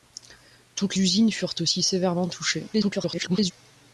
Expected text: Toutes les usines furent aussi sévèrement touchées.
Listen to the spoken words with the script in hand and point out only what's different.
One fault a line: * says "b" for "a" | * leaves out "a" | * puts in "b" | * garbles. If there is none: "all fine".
* leaves out "les"
* garbles